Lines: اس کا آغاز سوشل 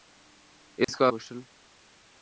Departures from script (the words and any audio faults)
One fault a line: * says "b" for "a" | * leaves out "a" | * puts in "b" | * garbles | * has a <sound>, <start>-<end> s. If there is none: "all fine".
* has a dropout, 0.8-0.9 s
* leaves out "آغاز"